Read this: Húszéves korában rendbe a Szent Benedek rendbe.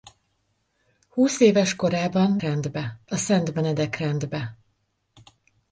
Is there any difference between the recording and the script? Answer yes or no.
no